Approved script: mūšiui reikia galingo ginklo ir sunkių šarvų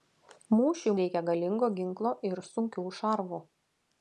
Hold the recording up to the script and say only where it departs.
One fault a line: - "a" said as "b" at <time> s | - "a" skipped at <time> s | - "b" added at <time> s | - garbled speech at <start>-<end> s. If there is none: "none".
none